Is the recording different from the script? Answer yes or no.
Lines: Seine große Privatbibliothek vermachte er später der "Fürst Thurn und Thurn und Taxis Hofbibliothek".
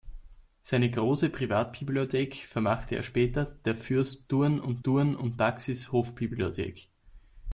no